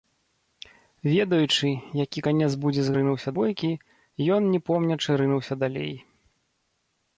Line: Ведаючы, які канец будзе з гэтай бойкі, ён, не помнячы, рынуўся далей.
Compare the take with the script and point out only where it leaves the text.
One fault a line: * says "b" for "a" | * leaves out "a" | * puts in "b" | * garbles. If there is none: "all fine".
* says "рынуўся" for "гэтай"